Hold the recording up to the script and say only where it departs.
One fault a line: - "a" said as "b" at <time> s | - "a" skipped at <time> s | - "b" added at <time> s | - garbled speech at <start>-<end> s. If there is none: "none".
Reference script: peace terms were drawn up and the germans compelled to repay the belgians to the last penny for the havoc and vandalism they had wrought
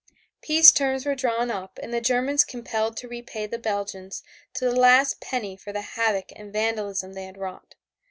none